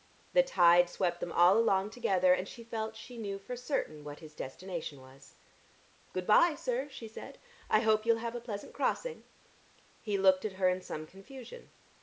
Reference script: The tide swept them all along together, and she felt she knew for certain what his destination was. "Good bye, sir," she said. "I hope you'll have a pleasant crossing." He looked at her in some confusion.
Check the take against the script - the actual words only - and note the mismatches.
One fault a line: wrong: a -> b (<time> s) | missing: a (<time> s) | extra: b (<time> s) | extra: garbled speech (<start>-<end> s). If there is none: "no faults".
no faults